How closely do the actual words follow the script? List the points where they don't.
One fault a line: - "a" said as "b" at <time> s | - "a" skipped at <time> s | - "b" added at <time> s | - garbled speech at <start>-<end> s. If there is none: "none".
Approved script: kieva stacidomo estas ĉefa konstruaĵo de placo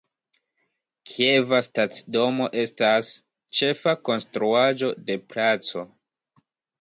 none